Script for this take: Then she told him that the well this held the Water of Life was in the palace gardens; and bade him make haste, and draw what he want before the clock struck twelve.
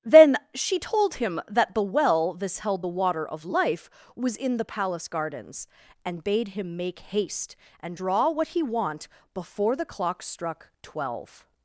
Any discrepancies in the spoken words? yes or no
no